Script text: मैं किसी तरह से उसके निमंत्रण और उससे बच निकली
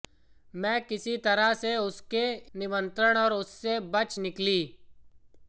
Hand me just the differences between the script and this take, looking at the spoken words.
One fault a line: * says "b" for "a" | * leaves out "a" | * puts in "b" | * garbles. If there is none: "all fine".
all fine